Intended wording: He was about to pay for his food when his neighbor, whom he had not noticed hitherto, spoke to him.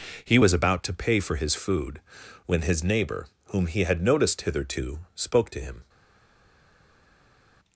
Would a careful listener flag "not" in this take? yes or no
yes